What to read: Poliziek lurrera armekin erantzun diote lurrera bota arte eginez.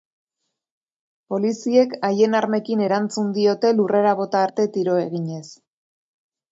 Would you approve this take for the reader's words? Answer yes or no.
no